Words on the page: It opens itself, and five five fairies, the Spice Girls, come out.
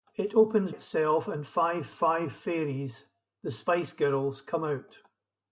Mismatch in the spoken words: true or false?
false